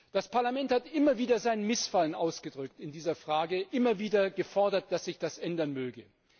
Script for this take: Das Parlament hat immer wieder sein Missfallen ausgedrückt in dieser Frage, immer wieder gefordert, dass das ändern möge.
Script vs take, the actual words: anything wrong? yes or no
yes